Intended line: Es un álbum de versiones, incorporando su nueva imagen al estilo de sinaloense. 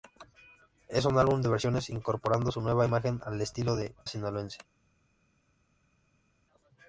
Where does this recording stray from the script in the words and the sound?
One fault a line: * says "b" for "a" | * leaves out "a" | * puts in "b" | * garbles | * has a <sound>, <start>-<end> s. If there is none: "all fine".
all fine